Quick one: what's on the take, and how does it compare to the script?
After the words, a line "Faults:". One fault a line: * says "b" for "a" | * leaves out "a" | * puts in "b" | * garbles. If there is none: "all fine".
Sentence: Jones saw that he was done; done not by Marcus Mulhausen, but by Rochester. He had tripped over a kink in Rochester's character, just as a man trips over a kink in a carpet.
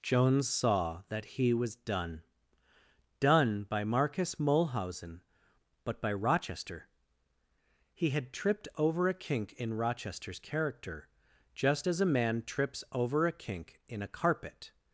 Jones saw that he was done; done by Marcus Mulhausen, but by Rochester. He had tripped over a kink in Rochester's character, just as a man trips over a kink in a carpet.
Faults:
* leaves out "not"